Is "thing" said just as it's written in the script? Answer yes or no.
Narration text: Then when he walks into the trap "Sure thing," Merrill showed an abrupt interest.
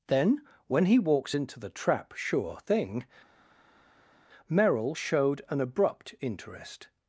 yes